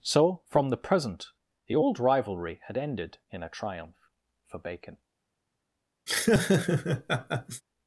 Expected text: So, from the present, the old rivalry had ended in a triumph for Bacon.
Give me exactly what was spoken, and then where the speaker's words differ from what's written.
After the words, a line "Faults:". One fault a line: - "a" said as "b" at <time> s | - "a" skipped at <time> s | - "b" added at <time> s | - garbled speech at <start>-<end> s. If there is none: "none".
So, from the present, the old rivalry had ended in a triumph for Bacon.
Faults:
none